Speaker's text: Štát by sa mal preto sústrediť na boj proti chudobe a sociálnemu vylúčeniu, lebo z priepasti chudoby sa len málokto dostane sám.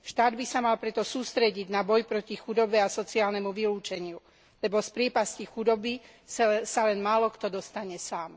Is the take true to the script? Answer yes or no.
yes